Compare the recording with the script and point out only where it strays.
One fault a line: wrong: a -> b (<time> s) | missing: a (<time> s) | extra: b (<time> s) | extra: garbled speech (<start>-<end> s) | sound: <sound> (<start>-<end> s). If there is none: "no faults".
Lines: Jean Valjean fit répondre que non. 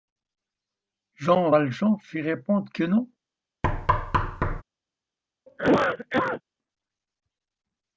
sound: thud (3.6-4.6 s)
sound: cough (5.5-6.4 s)